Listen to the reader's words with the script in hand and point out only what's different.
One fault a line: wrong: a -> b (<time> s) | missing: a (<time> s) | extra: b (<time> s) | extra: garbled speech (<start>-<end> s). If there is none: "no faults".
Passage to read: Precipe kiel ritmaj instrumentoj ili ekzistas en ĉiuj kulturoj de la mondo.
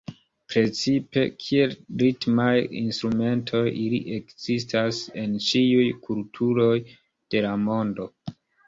no faults